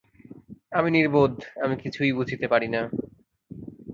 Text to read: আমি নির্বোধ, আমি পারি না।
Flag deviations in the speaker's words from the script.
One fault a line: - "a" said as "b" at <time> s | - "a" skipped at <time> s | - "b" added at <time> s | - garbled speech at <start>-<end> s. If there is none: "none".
- "কিছুই বুঝিতে" added at 1.8 s